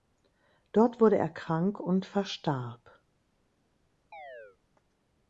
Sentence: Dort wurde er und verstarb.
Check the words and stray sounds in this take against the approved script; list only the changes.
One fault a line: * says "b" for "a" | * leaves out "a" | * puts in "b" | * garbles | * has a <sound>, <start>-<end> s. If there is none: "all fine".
* puts in "krank"
* has a chirp, 4.1-4.6 s